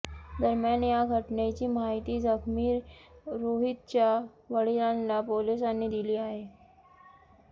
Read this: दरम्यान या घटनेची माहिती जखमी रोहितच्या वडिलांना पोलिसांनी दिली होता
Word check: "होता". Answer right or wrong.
wrong